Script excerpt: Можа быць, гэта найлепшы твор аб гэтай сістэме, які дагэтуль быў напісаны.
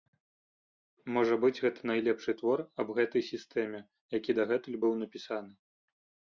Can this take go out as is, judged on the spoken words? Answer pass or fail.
pass